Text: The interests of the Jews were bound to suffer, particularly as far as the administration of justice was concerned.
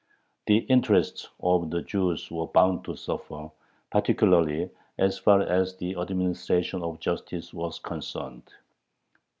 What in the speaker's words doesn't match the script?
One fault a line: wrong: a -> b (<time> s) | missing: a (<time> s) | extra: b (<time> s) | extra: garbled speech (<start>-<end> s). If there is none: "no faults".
no faults